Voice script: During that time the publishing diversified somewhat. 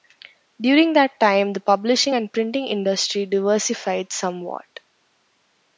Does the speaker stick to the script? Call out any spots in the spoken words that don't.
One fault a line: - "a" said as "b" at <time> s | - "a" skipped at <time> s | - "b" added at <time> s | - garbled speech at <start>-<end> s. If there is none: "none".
- "and printing industry" added at 2.1 s